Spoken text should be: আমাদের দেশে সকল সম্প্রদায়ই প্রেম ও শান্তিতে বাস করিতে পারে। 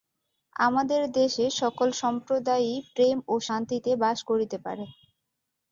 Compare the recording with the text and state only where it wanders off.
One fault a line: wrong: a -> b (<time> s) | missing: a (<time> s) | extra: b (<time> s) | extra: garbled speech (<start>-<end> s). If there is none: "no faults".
no faults